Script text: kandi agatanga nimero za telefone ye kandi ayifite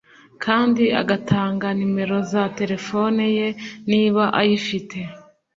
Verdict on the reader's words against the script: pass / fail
fail